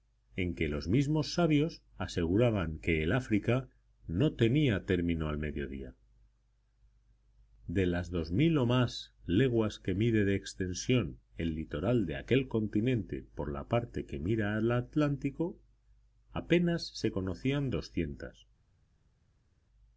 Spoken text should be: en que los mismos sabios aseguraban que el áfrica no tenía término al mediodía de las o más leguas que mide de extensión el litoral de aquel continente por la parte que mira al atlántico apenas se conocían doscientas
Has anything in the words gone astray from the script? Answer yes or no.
yes